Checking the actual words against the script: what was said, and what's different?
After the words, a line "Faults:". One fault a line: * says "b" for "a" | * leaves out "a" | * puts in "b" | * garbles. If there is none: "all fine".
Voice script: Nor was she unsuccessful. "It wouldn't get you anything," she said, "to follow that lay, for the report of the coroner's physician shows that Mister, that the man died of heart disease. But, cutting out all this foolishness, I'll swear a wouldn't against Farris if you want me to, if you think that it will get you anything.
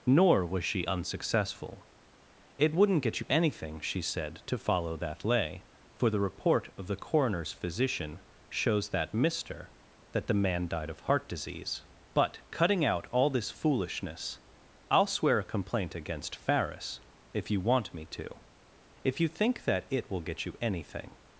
Nor was she unsuccessful. "It wouldn't get you anything," she said, "to follow that lay, for the report of the coroner's physician shows that Mister, that the man died of heart disease. But, cutting out all this foolishness, I'll swear a complaint against Farris if you want me to, if you think that it will get you anything.
Faults:
* says "complaint" for "wouldn't"